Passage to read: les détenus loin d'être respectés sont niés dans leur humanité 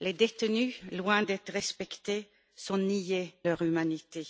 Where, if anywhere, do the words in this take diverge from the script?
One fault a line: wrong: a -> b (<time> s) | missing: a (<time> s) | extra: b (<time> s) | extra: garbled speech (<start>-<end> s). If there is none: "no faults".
missing: dans (3.3 s)